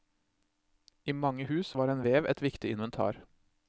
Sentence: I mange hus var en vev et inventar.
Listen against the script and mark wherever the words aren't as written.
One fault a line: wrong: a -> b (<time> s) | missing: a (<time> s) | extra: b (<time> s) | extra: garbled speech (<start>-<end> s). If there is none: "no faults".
extra: viktig (2.5 s)